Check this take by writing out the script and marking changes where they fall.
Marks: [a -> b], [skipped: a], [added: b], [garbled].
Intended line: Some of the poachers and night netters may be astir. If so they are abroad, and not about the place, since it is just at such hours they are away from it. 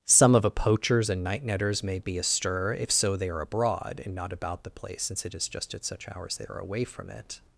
Some of [the -> a] poachers and night netters may be astir. If so they are abroad, and not about the place, since it is just at such hours they are away from it.